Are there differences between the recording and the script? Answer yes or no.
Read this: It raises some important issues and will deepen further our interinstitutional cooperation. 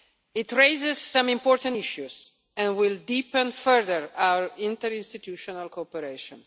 no